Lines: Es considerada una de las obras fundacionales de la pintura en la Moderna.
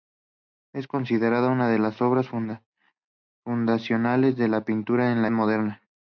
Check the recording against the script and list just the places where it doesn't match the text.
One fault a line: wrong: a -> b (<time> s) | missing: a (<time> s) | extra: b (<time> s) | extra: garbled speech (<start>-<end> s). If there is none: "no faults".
no faults